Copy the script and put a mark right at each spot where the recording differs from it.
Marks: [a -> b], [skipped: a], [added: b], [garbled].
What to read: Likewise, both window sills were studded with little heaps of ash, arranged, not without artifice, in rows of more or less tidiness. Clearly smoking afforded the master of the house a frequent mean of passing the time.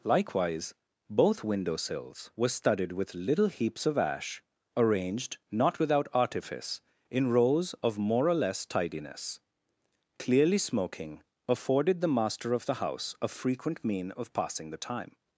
Likewise, both window sills were studded with little heaps of ash, arranged, not without artifice, in rows of more or less tidiness. Clearly smoking afforded the master of the house a frequent mean of passing the time.